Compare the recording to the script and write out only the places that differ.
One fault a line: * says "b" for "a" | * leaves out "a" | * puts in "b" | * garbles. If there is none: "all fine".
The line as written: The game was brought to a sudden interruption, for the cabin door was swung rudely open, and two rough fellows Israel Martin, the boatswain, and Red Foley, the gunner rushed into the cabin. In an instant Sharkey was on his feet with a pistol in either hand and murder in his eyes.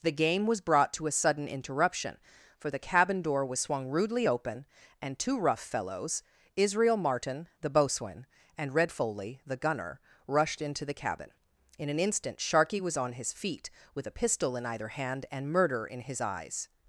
all fine